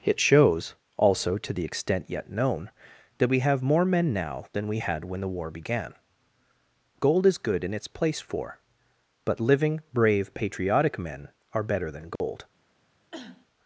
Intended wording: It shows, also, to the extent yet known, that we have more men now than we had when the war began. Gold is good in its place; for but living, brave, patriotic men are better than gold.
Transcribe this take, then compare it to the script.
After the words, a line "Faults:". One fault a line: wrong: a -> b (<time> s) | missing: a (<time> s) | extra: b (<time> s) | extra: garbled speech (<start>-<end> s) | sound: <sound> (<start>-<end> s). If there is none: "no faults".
It shows, also, to the extent yet known, that we have more men now than we had when the war began. Gold is good in its place; for but living, brave, patriotic men are better than gold.
Faults:
sound: dropout (12.2-12.2 s)
sound: cough (13.1-13.5 s)